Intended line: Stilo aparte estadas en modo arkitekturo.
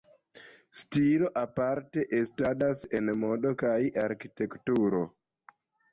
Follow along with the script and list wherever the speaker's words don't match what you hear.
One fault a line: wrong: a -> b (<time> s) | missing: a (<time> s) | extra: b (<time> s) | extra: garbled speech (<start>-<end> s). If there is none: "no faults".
extra: kaj (3.6 s)